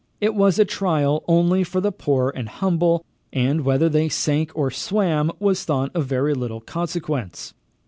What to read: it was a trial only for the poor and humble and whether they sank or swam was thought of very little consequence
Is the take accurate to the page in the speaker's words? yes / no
yes